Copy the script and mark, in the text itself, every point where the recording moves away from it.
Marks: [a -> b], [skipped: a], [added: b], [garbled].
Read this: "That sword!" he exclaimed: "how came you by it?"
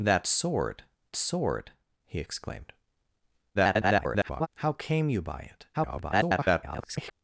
"That sword!" [added: sword] he exclaimed: [garbled] "how came you by it?" [garbled]